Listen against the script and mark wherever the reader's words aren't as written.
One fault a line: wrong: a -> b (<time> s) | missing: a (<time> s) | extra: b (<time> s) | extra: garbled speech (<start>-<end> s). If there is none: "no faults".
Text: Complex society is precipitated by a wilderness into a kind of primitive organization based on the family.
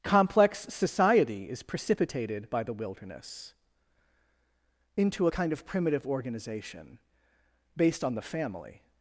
wrong: a -> the (2.6 s)